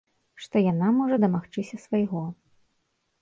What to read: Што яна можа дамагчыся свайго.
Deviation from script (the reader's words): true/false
false